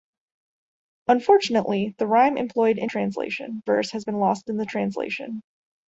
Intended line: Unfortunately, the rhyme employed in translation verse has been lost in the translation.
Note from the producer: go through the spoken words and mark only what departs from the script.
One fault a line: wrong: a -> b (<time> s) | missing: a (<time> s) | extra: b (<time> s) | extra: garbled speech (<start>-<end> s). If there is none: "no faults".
no faults